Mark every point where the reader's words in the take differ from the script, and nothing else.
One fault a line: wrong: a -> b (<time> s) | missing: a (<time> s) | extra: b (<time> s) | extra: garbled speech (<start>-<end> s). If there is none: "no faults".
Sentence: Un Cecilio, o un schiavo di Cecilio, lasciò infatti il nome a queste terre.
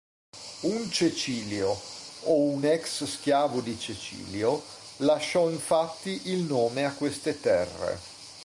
extra: ex (2.6 s)